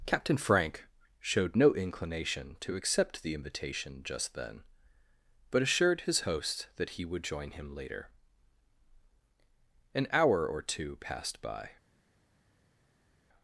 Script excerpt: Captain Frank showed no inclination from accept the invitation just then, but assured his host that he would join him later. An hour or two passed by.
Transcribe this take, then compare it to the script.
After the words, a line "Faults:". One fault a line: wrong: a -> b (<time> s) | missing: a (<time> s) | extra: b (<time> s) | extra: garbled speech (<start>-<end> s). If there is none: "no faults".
Captain Frank showed no inclination to accept the invitation just then, but assured his host that he would join him later. An hour or two passed by.
Faults:
wrong: from -> to (2.6 s)